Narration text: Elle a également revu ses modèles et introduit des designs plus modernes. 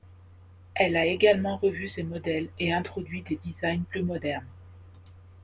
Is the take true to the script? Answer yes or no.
yes